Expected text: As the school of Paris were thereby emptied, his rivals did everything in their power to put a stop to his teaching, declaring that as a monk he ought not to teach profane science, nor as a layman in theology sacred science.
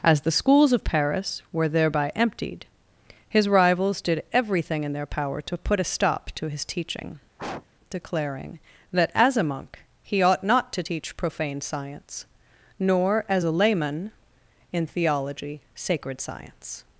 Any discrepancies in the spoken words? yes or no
yes